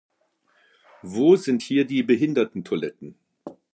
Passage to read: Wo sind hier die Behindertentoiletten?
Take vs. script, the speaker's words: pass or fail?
pass